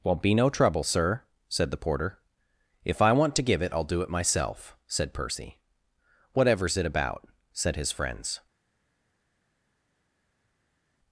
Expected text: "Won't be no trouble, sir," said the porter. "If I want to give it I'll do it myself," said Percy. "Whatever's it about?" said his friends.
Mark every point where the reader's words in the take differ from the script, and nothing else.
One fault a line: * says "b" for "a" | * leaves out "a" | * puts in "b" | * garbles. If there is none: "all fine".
all fine